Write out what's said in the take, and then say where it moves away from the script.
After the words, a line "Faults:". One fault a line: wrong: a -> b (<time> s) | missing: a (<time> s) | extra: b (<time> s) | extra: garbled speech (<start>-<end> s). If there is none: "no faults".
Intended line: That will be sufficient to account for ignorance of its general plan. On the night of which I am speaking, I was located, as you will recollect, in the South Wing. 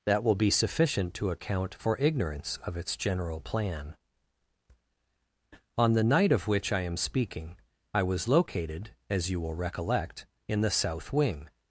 That will be sufficient to account for ignorance of its general plan. On the night of which I am speaking, I was located, as you will recollect, in the South Wing.
Faults:
no faults